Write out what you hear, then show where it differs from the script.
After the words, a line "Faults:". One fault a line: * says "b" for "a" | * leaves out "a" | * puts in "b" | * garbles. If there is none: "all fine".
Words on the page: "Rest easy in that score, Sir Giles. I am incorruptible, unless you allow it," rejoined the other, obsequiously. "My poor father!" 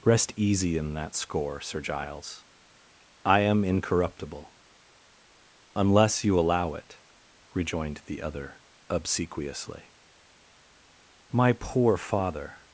"Rest easy in that score, Sir Giles. I am incorruptible, unless you allow it," rejoined the other, obsequiously. "My poor father!"
Faults:
all fine